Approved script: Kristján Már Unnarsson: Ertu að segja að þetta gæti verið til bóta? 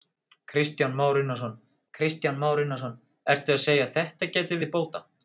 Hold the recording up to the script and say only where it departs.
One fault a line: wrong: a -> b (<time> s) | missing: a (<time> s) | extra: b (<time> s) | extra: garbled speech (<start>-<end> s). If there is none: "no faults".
extra: kristján Már Unnarsson (1.9 s)
missing: verið (4.6 s)